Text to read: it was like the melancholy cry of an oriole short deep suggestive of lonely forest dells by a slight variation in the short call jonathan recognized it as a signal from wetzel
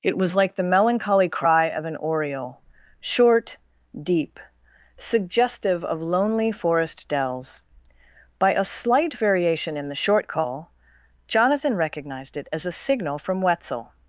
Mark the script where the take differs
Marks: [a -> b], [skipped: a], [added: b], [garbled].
it was like the melancholy cry of an oriole short deep suggestive of lonely forest dells by a slight variation in the short call jonathan recognized it as a signal from wetzel